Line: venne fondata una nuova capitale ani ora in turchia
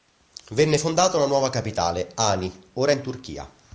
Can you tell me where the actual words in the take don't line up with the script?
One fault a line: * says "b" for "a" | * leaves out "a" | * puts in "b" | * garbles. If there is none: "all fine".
all fine